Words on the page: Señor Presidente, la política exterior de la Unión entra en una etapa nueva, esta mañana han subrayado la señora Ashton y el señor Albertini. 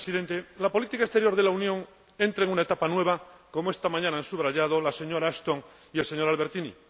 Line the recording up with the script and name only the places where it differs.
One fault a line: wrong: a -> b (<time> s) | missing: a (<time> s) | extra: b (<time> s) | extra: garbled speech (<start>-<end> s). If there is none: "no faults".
extra: como (3.5 s)